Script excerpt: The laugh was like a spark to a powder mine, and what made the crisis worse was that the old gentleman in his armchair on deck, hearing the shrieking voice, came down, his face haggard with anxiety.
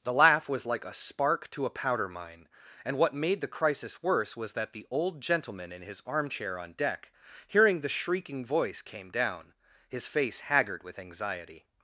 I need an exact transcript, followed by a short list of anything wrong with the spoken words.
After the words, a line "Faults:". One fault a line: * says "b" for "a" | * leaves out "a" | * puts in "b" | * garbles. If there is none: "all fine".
The laugh was like a spark to a powder mine, and what made the crisis worse was that the old gentleman in his armchair on deck, hearing the shrieking voice, came down, his face haggard with anxiety.
Faults:
all fine